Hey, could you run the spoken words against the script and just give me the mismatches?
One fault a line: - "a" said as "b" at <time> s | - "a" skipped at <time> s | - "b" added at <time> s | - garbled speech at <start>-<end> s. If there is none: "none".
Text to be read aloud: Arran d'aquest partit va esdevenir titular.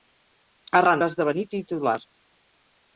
- "d'aquest partit" skipped at 1.0 s